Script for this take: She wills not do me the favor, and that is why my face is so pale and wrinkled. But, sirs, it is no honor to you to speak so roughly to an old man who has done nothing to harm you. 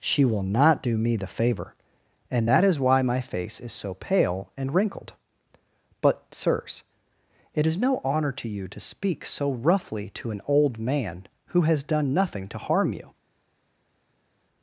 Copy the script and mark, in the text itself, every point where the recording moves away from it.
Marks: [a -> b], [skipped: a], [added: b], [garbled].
She [wills -> will] not do me the favor, and that is why my face is so pale and wrinkled. But, sirs, it is no honor to you to speak so roughly to an old man who has done nothing to harm you.